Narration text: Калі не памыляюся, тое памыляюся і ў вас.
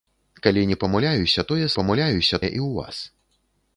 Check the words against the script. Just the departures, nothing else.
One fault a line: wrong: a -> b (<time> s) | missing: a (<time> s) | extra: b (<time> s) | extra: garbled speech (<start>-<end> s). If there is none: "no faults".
no faults